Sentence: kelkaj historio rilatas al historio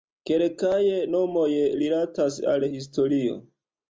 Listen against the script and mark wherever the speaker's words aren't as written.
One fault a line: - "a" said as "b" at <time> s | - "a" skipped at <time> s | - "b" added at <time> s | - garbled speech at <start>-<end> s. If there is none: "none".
- "historio" said as "nomoj" at 1.1 s